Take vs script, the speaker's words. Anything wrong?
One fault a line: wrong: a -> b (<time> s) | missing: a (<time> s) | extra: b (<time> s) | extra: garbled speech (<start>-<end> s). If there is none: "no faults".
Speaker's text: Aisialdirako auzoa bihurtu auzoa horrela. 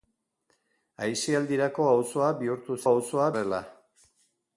no faults